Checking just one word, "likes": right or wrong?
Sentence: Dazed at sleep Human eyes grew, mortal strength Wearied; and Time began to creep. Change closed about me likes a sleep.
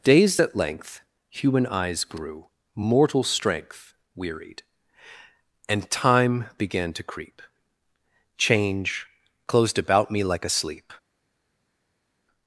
wrong